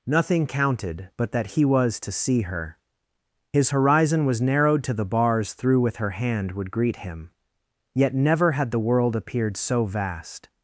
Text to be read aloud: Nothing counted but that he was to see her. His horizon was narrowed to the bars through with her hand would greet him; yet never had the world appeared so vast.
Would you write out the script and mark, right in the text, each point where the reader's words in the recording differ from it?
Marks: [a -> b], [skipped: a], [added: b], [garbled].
Nothing counted but that he was to see her. His horizon was narrowed to the bars through with her hand would greet him; yet never had the world appeared so vast.